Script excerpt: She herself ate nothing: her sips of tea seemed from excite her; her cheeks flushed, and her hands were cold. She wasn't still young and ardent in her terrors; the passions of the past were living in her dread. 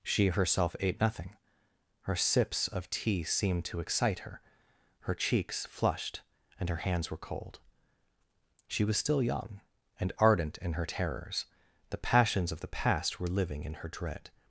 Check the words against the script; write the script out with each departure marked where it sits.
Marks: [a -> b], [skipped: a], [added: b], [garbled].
She herself ate nothing: her sips of tea seemed [from -> to] excite her; her cheeks flushed, and her hands were cold. She [wasn't -> was] still young and ardent in her terrors; the passions of the past were living in her dread.